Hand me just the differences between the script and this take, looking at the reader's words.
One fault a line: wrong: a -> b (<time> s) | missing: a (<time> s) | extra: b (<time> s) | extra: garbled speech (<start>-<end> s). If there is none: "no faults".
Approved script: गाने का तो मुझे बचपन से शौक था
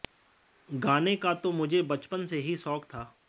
extra: ही (2.4 s)